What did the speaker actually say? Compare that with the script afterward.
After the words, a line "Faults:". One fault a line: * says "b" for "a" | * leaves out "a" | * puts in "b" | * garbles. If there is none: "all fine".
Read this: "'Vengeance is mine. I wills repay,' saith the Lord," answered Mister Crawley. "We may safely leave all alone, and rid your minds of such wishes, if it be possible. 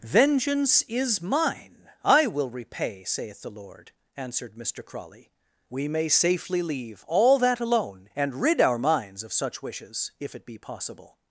"'Vengeance is mine. I will repay,' saith the Lord," answered Mister Crawley. "We may safely leave all that alone, and rid our minds of such wishes, if it be possible.
Faults:
* says "will" for "wills"
* puts in "that"
* says "our" for "your"